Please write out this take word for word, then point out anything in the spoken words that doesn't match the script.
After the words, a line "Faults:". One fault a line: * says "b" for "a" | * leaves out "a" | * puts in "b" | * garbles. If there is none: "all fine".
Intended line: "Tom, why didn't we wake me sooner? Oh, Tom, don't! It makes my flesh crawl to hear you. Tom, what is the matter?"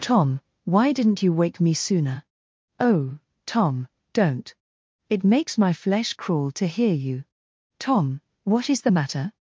"Tom, why didn't you wake me sooner? Oh, Tom, don't! It makes my flesh crawl to hear you. Tom, what is the matter?"
Faults:
* says "you" for "we"